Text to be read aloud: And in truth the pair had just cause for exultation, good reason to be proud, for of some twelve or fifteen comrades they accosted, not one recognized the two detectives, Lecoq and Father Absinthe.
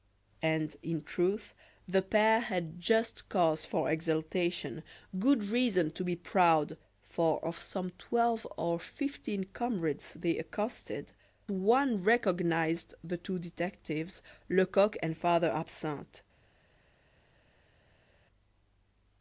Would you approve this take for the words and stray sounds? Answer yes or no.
no